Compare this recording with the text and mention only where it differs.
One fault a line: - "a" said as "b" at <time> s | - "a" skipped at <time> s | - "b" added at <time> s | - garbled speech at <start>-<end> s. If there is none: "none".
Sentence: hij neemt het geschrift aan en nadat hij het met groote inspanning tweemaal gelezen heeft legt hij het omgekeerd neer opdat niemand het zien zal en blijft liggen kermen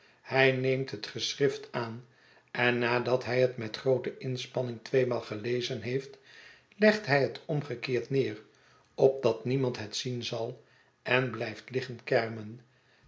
none